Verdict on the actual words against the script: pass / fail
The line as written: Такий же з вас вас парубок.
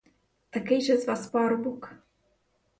fail